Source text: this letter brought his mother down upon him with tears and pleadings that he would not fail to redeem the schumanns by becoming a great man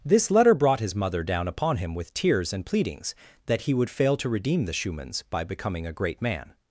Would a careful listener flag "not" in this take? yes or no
yes